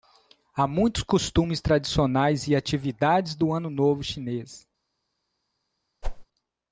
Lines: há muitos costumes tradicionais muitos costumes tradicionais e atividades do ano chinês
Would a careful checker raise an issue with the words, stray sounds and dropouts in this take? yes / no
yes